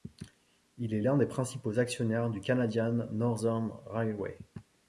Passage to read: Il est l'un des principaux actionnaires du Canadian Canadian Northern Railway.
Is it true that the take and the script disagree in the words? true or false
true